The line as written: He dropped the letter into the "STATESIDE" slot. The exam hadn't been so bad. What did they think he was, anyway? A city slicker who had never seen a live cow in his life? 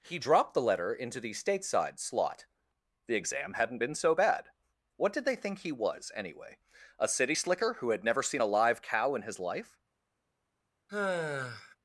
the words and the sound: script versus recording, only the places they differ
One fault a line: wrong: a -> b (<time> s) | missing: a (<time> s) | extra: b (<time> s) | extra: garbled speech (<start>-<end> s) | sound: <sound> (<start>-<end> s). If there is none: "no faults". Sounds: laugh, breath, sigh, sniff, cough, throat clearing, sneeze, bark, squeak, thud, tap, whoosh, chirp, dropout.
sound: sigh (10.9-11.8 s)